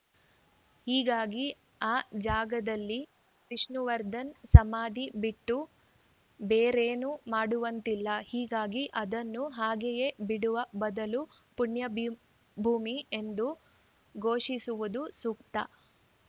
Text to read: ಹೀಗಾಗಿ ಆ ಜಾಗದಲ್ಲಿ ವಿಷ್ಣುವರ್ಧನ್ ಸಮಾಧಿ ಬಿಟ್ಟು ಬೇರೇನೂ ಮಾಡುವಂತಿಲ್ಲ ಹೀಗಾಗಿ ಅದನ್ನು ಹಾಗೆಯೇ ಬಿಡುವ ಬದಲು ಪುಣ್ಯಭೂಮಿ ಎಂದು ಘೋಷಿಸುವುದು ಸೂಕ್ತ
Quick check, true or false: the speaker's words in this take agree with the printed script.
true